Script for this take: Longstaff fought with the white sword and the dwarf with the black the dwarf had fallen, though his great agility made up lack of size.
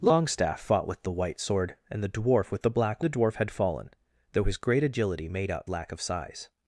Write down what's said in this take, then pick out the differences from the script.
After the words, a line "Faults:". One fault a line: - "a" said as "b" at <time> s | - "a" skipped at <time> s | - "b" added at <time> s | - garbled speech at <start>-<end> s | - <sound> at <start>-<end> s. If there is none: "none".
Longstaff fought with the white sword and the dwarf with the black the dwarf had fallen, though his great agility made up lack of size.
Faults:
none